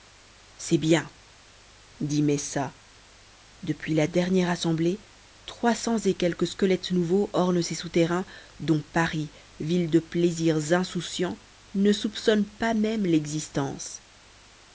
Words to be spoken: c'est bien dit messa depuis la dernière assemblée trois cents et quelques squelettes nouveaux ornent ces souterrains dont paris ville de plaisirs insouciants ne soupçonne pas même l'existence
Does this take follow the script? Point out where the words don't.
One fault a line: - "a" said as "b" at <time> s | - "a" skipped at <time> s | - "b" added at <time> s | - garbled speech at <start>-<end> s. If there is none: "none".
none